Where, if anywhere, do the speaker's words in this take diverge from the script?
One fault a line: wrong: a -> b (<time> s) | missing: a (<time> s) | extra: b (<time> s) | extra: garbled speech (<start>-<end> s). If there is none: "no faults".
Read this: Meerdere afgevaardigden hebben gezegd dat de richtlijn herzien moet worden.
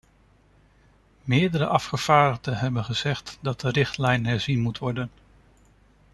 no faults